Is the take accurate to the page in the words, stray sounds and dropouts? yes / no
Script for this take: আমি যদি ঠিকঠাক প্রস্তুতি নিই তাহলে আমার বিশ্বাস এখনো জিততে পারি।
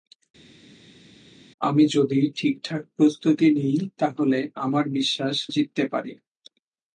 no